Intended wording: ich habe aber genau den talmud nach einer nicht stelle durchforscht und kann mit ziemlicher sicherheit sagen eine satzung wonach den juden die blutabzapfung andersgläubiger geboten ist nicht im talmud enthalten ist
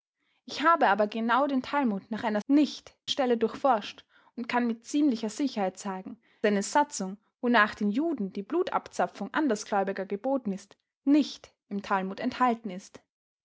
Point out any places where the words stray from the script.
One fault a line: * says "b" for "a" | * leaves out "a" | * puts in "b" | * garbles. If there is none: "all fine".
all fine